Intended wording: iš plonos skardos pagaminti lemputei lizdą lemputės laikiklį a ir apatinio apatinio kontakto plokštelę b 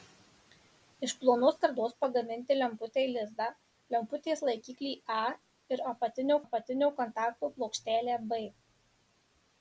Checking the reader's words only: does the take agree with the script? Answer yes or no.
yes